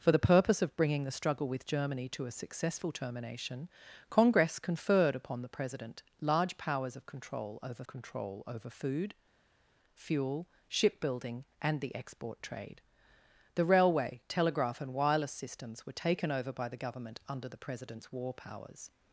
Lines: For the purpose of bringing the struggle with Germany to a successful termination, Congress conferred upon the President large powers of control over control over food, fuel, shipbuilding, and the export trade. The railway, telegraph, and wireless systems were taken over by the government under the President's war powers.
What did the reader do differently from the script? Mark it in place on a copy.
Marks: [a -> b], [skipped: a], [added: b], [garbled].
For the purpose of bringing the struggle with Germany to a successful termination, Congress conferred upon the President large powers of control over control over food, fuel, shipbuilding, and the export trade. The railway, telegraph, and wireless systems were taken over by the government under the President's war powers.